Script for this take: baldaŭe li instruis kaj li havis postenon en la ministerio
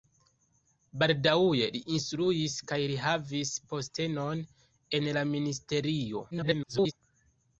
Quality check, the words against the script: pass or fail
fail